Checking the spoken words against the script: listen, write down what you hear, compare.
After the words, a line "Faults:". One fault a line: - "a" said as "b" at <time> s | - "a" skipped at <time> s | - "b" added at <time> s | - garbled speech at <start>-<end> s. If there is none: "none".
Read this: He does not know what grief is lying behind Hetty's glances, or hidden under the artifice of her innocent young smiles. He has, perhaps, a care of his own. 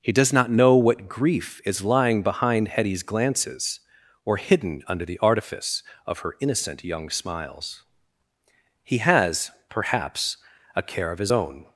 He does not know what grief is lying behind Hetty's glances, or hidden under the artifice of her innocent young smiles. He has, perhaps, a care of his own.
Faults:
none